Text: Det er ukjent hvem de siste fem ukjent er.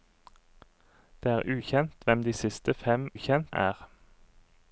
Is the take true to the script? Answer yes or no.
yes